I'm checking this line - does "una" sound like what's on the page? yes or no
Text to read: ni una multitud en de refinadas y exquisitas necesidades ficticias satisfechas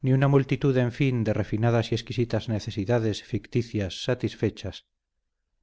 yes